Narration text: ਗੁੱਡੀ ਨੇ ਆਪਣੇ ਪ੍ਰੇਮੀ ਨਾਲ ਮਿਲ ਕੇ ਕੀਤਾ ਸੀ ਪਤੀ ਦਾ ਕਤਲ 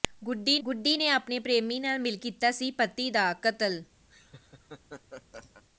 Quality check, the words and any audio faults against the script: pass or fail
fail